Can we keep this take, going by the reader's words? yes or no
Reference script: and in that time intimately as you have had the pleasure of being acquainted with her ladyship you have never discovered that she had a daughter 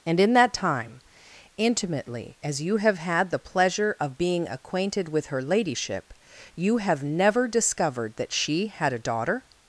yes